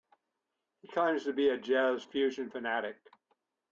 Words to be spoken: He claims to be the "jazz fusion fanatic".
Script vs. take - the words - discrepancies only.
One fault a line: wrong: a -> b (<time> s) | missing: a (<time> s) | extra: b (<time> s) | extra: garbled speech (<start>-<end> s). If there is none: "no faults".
wrong: the -> a (1.5 s)